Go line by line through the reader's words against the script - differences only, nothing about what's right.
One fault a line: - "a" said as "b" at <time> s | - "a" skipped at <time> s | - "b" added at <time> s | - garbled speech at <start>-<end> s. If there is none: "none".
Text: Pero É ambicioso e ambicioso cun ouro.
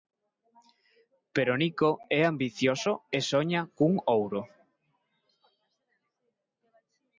- "Nico" added at 1.6 s
- "ambicioso" said as "soña" at 3.3 s